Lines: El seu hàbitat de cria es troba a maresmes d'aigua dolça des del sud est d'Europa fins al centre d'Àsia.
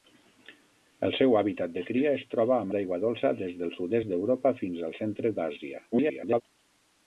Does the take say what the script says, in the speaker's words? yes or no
no